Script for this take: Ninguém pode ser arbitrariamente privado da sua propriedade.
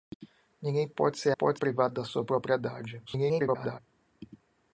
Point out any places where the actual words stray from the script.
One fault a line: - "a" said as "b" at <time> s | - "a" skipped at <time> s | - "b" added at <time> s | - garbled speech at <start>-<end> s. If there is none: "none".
- "arbitrariamente" said as "pode" at 1.3 s
- garbled speech at 3.1-3.8 s